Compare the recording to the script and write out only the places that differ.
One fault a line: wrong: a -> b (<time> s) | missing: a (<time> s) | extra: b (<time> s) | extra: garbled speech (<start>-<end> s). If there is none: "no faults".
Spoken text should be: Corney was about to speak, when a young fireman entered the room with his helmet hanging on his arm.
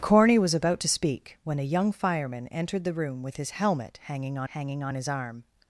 extra: hanging on (4.5 s)